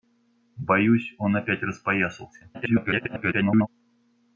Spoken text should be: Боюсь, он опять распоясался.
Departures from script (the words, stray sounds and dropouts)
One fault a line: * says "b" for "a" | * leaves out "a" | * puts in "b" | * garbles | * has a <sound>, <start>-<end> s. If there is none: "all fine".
* garbles